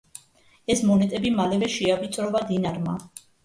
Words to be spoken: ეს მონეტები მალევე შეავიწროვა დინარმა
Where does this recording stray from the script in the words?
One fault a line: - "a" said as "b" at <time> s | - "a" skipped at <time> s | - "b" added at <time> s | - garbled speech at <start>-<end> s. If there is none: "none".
none